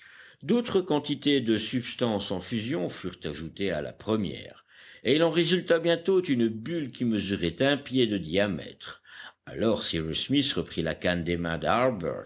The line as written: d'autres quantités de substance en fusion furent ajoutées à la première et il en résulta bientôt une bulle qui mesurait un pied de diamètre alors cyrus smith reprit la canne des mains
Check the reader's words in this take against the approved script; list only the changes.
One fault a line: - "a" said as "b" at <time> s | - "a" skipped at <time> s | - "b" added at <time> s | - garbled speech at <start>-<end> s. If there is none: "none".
none